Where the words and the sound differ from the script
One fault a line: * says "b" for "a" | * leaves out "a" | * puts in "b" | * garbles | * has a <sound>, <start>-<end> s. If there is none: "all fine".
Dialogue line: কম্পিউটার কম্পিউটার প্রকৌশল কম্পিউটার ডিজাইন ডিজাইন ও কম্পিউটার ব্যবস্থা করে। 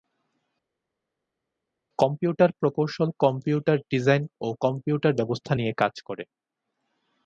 * leaves out "কম্পিউটার"
* leaves out "ডিজাইন"
* puts in "নিয়ে কাজ"